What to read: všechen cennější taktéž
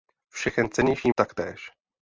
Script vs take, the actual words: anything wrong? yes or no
no